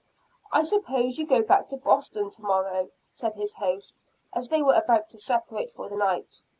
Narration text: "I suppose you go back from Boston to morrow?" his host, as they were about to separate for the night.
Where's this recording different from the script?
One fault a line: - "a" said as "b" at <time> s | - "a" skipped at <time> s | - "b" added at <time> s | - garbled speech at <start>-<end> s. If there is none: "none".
- "from" said as "to" at 1.7 s
- "said" added at 3.1 s